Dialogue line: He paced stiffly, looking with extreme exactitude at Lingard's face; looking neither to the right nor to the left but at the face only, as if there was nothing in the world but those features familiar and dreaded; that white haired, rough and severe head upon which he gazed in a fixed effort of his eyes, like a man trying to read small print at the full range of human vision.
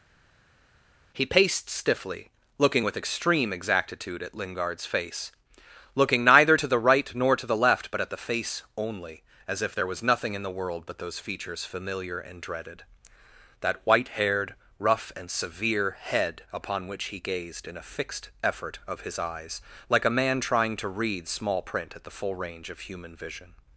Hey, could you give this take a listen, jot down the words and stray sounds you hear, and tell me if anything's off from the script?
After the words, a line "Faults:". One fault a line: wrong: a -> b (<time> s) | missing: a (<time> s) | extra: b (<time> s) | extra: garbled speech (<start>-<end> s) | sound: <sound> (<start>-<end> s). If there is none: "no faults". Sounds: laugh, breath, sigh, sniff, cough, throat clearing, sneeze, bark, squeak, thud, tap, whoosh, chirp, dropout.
He paced stiffly, looking with extreme exactitude at Lingard's face; looking neither to the right nor to the left but at the face only, as if there was nothing in the world but those features familiar and dreaded; that white haired, rough and severe head upon which he gazed in a fixed effort of his eyes, like a man trying to read small print at the full range of human vision.
Faults:
no faults